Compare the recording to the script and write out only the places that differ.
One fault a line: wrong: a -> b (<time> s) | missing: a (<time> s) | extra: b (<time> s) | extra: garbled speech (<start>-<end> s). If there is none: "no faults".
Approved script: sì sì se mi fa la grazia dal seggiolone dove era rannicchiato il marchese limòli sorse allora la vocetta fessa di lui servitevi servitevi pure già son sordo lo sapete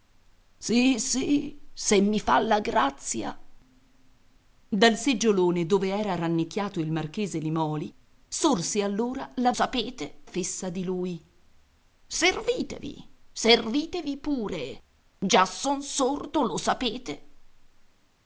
wrong: vocetta -> sapete (9.5 s)